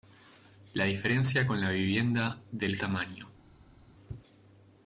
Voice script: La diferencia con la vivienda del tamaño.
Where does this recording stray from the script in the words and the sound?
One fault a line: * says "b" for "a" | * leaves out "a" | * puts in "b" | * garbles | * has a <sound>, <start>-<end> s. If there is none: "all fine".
all fine